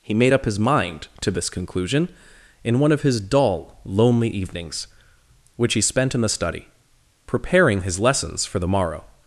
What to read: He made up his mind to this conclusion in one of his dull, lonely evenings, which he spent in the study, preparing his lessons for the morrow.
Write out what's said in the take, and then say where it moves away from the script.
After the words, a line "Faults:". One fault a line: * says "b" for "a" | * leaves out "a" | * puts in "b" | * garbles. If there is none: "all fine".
He made up his mind to this conclusion in one of his dull, lonely evenings, which he spent in the study, preparing his lessons for the morrow.
Faults:
all fine